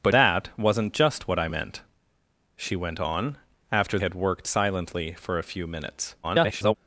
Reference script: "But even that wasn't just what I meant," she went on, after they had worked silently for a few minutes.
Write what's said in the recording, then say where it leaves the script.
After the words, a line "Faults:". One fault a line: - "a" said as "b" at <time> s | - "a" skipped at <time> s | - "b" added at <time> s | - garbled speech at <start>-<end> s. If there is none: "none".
"But that wasn't just what I meant," she went on, after had worked silently for a few minutes. [garbled]
Faults:
- "even" skipped at 0.1 s
- "they" skipped at 4.0 s
- garbled speech at 6.2-6.7 s